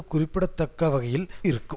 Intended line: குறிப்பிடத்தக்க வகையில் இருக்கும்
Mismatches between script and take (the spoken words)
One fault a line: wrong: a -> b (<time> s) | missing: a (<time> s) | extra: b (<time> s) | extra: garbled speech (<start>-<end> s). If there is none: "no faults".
no faults